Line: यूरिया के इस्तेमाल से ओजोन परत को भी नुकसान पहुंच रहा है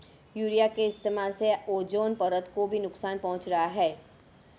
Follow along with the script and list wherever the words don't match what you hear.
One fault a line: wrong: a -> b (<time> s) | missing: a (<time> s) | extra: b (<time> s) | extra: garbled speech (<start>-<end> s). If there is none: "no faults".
no faults